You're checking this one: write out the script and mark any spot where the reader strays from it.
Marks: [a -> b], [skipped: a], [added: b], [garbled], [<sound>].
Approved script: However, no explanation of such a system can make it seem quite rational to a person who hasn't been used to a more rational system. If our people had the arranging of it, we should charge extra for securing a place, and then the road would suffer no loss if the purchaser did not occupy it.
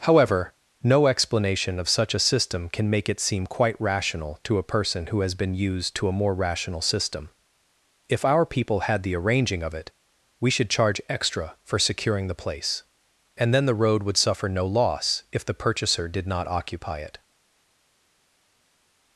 However, no explanation of such a system can make it seem quite rational to a person who [hasn't -> has] been used to a more rational system. If our people had the arranging of it, we should charge extra for securing [a -> the] place, and then the road would suffer no loss if the purchaser did not occupy it.